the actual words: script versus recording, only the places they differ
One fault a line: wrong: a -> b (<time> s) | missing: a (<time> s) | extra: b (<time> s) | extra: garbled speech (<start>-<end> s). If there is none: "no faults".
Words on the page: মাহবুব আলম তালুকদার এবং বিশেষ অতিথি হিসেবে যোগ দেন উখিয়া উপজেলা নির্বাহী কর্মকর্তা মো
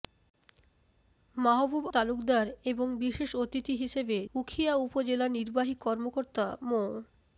missing: আলম (1.9 s)
missing: যোগ দেন (4.2 s)